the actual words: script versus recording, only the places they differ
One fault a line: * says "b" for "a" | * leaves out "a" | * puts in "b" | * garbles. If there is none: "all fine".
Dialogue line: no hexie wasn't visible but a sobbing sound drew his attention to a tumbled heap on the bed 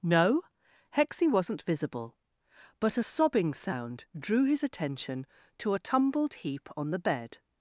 all fine